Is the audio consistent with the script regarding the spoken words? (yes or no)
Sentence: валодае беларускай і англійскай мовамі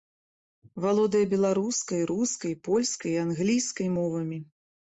no